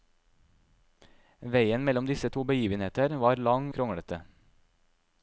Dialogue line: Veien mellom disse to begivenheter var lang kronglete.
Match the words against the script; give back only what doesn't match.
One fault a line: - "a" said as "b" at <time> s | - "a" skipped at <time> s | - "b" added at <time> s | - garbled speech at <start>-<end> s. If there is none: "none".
none